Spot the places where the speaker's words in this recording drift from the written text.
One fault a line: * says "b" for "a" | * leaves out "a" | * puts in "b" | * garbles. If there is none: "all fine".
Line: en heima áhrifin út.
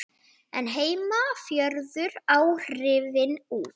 * puts in "fjöruðu"